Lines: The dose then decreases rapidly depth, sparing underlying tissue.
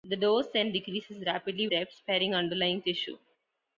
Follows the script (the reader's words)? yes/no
yes